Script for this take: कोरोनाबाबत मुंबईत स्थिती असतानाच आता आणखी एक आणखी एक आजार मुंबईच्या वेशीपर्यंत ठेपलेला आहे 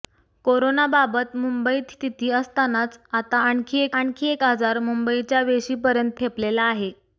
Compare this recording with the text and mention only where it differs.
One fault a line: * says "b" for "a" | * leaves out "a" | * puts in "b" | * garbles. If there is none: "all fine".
all fine